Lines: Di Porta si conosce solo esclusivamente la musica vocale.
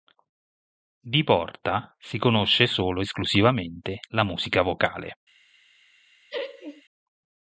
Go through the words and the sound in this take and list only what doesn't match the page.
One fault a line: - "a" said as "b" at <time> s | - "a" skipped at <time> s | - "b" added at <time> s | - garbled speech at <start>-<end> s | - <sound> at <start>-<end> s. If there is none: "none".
- laugh at 6.3-6.8 s